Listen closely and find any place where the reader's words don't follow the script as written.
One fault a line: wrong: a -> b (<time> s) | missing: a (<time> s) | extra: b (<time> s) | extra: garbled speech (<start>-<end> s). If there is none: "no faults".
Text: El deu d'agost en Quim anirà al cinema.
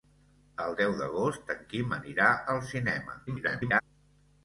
extra: garbled speech (3.3-3.8 s)